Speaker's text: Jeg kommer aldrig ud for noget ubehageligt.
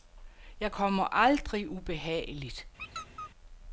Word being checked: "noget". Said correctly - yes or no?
no